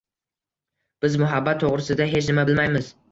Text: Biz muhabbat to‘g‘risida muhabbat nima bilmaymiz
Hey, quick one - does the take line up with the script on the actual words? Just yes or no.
no